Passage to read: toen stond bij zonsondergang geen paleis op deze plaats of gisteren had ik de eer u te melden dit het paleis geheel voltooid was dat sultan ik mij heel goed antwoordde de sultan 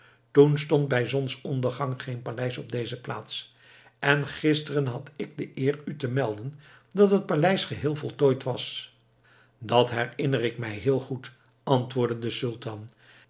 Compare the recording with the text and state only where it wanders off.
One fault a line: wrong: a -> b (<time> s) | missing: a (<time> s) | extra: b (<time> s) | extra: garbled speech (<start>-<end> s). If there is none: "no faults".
wrong: of -> en (4.0 s)
wrong: dit -> dat (6.9 s)
wrong: sultan -> herinner (9.9 s)